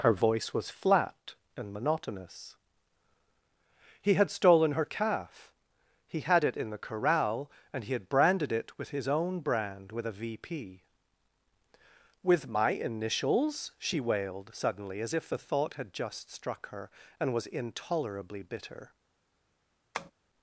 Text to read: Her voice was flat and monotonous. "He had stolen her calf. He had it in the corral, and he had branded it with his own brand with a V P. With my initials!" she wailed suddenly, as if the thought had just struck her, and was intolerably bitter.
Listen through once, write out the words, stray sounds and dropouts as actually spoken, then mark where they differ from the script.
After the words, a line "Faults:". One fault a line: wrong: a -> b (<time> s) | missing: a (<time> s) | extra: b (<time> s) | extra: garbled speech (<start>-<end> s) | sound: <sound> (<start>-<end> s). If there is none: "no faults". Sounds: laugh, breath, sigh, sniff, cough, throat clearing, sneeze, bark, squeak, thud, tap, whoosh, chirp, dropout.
Her voice was flat and monotonous. "He had stolen her calf. He had it in the corral, and he had branded it with his own brand with a V P. With my initials!" she wailed suddenly, as if the thought had just struck her, and was intolerably bitter.
Faults:
sound: tap (19.9-20.1 s)